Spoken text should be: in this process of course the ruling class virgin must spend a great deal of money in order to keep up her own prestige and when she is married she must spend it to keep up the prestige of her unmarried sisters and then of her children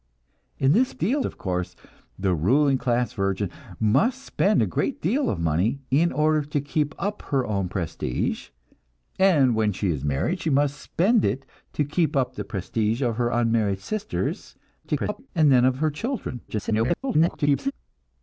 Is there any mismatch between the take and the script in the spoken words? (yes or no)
yes